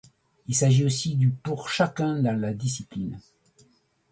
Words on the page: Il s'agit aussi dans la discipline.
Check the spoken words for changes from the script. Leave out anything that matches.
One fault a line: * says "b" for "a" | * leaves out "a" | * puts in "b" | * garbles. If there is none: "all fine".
* puts in "du pour chacun"